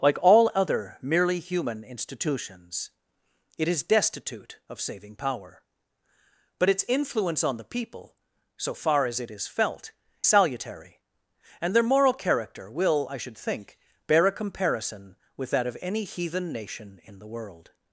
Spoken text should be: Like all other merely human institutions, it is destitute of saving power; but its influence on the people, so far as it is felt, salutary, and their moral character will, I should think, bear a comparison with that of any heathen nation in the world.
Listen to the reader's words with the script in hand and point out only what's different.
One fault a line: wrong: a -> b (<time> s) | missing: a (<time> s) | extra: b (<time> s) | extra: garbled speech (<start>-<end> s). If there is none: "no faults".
no faults